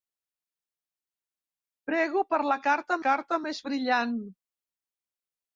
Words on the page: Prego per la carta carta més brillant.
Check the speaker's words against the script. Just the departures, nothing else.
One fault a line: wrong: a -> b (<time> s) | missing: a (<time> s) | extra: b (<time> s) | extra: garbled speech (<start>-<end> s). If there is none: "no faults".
no faults